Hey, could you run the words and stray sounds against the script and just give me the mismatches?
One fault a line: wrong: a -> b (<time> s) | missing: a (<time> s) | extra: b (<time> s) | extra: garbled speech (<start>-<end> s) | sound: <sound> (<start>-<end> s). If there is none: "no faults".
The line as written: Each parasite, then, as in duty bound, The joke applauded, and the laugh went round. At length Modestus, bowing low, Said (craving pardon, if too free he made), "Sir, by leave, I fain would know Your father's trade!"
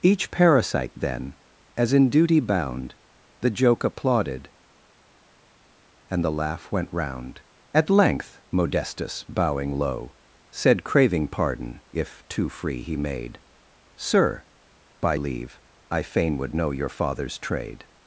no faults